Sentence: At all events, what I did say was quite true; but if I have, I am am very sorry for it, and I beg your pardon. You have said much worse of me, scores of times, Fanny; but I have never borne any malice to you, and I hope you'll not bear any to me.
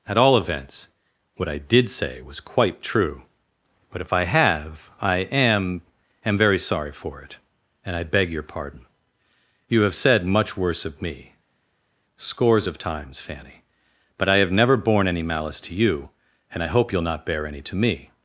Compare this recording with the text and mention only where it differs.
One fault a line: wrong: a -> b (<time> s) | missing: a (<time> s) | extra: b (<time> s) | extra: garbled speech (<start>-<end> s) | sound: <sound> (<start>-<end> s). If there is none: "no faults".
no faults